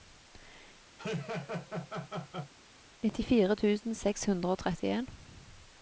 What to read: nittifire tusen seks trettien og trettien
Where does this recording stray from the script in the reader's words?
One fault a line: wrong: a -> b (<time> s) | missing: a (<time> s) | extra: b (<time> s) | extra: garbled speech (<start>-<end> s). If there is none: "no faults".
wrong: trettien -> hundre (4.3 s)